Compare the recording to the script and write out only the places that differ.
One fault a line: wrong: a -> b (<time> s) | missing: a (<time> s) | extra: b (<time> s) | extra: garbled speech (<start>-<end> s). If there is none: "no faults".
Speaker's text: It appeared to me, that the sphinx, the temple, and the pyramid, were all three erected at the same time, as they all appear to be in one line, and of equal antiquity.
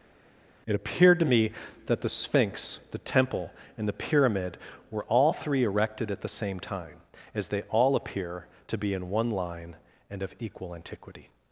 no faults